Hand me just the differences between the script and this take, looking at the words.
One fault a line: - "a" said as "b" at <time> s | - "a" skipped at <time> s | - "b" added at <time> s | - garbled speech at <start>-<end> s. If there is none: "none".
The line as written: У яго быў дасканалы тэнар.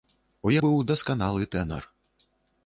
- "яго" skipped at 0.5 s